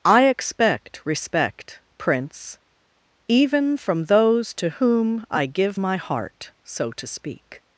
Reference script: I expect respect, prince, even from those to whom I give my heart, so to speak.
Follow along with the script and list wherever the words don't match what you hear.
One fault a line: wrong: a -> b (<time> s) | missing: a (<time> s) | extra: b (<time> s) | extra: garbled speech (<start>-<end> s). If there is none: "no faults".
no faults